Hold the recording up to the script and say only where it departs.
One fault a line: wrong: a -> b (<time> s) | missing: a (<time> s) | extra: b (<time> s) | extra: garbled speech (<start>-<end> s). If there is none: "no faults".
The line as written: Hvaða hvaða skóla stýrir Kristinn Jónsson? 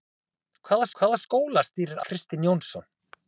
no faults